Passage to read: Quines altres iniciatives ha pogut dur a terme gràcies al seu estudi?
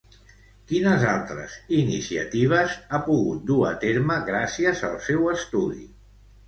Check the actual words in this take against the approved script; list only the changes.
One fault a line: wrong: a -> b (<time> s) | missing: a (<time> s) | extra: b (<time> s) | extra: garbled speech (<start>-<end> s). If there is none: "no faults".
no faults